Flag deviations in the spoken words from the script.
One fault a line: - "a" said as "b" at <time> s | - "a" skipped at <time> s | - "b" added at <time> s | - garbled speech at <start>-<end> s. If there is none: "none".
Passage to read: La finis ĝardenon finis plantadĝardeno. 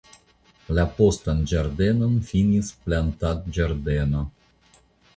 - "finis" said as "postan" at 1.0 s